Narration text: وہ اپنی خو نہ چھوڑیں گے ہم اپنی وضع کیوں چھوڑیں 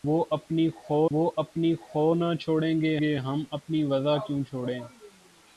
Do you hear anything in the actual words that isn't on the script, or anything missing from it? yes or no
yes